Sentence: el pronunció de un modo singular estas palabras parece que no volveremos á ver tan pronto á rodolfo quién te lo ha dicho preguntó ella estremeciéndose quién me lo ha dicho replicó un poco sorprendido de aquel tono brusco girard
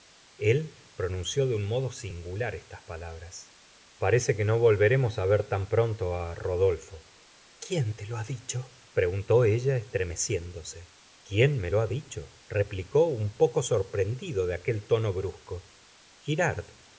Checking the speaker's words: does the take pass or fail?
pass